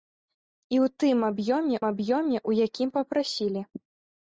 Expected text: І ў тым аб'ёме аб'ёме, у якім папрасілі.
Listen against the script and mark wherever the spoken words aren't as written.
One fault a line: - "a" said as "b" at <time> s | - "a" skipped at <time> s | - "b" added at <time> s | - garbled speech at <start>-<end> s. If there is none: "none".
none